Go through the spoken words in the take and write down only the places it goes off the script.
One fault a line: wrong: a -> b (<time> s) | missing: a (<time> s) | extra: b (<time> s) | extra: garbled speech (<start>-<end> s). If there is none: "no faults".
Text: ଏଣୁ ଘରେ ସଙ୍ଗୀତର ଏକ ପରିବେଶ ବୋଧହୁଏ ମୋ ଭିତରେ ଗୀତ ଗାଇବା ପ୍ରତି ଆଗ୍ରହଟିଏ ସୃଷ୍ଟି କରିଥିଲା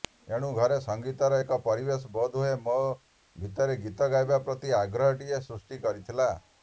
no faults